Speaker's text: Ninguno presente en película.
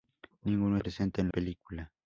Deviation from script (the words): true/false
false